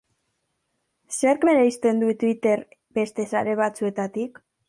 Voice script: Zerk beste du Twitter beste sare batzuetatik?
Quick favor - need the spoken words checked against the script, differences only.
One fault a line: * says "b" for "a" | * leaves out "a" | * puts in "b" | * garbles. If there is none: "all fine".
* says "bereizten" for "beste"